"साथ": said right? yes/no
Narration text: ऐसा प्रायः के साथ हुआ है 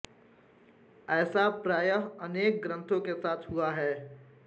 yes